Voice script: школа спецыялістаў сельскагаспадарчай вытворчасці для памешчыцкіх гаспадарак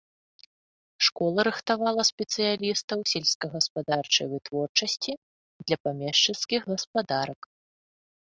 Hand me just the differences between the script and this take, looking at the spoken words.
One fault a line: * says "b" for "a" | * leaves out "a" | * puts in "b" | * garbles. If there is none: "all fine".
* puts in "рыхтавала"